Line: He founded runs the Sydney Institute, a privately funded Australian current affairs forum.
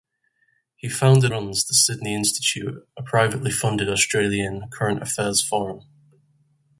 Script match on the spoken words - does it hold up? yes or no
yes